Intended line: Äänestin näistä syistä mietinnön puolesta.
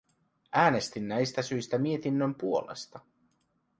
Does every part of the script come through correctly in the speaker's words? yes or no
yes